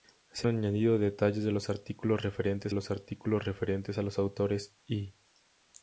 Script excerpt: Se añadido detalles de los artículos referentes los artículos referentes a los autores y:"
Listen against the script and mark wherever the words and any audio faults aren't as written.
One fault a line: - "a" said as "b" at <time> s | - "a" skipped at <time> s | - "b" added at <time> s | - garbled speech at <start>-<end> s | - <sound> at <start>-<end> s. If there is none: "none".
none